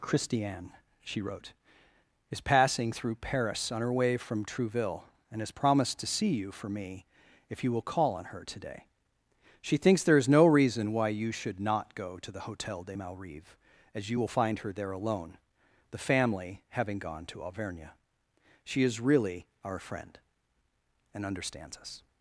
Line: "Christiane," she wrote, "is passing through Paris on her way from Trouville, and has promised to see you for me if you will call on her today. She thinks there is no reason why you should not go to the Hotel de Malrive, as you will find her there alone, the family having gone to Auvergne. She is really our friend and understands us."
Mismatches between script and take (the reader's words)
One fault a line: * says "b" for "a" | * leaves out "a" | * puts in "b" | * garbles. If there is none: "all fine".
all fine